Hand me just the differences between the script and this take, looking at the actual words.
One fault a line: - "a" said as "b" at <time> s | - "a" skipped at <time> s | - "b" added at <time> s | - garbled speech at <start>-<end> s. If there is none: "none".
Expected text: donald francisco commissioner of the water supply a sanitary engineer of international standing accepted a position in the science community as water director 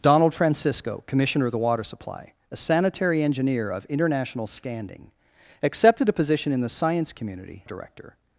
- "as water" skipped at 7.6 s